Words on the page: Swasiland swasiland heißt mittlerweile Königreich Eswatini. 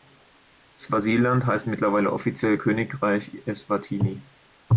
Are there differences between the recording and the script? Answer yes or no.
yes